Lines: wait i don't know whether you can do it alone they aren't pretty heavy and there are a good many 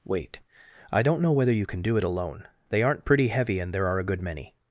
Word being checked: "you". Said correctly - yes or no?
yes